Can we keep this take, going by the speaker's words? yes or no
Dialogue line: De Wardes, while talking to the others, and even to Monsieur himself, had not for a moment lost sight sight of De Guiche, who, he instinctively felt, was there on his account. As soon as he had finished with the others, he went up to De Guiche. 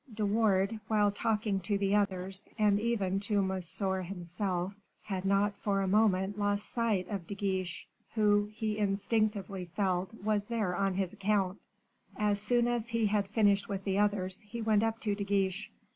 no